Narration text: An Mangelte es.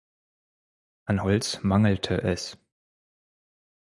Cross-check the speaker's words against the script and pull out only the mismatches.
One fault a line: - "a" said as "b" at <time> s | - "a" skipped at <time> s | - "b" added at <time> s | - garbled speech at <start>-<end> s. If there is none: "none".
- "Holz" added at 1.2 s